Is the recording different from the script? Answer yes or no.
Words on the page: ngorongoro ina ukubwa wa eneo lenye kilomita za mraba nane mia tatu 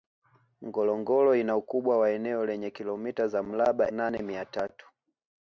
no